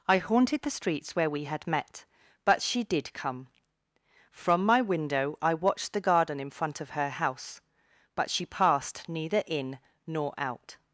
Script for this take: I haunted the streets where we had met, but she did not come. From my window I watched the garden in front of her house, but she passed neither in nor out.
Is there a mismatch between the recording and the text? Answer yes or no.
yes